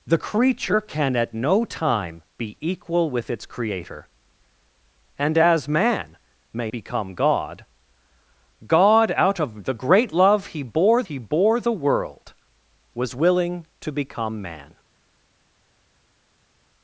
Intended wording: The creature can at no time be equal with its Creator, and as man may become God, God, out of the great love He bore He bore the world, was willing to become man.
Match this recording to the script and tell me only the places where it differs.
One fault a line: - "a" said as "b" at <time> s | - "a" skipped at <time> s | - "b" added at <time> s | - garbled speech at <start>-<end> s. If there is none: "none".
none